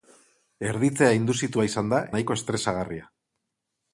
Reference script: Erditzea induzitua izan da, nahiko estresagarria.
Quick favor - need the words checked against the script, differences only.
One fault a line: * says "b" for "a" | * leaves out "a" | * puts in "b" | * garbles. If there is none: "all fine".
all fine